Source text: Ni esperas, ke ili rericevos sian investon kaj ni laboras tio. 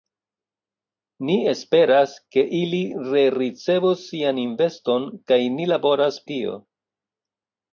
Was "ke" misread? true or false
false